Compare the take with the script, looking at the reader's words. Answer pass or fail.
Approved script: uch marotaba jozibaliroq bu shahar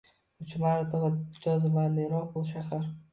pass